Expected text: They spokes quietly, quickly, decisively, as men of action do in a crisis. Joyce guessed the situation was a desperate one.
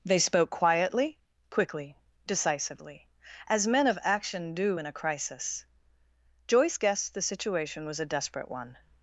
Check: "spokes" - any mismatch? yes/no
yes